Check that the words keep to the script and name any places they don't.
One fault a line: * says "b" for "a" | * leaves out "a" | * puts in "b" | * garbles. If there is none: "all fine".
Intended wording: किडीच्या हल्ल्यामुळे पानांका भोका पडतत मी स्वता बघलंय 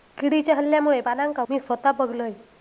* leaves out "भोका पडतत"